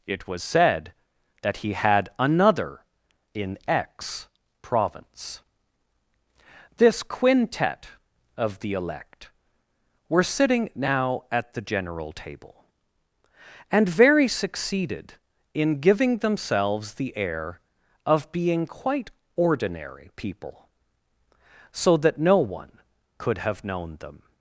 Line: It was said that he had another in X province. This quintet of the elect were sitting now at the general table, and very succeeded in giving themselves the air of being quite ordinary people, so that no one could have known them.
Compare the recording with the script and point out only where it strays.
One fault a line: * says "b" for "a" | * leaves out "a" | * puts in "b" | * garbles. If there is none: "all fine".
all fine